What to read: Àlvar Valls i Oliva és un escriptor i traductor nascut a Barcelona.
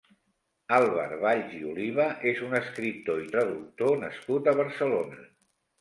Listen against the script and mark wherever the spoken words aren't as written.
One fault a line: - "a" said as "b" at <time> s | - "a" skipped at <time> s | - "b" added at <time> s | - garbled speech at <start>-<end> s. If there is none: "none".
none